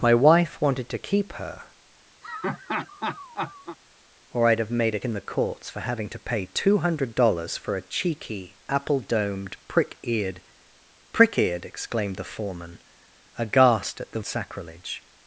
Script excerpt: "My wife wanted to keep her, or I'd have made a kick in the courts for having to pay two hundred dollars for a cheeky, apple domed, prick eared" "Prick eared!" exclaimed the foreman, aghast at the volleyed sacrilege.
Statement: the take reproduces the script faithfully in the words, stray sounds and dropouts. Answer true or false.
false